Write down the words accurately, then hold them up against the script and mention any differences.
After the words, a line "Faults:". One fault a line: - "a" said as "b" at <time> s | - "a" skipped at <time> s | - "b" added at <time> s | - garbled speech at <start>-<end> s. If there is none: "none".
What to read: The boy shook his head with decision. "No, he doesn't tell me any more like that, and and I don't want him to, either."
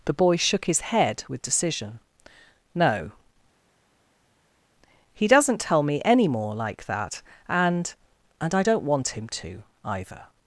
The boy shook his head with decision. "No, he doesn't tell me any more like that, and and I don't want him to, either."
Faults:
none